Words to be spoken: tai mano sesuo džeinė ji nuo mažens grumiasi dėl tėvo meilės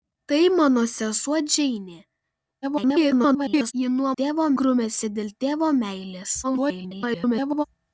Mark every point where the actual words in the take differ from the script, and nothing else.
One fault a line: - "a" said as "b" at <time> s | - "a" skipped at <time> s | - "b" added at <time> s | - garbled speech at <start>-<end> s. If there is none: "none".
- garbled speech at 2.6-3.7 s
- "mažens" said as "tėvo" at 4.2 s
- garbled speech at 6.4-7.6 s